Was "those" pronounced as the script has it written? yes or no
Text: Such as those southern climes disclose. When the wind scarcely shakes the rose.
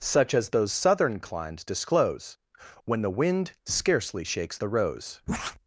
yes